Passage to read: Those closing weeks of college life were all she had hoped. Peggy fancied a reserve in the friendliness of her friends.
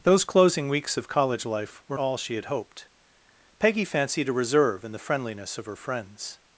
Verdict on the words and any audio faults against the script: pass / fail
pass